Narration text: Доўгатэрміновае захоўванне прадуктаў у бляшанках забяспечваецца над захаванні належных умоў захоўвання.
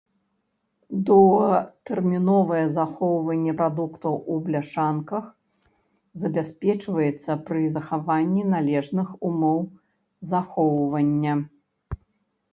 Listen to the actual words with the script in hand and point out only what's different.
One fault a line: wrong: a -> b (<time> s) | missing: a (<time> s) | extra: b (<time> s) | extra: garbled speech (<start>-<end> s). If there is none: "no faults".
wrong: над -> пры (7.5 s)